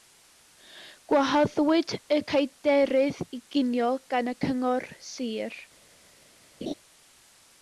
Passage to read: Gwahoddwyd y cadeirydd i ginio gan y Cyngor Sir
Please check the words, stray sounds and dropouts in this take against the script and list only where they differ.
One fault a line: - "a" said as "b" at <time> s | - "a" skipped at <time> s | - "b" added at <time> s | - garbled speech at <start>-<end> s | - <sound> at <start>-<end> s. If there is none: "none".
- laugh at 6.6-6.7 s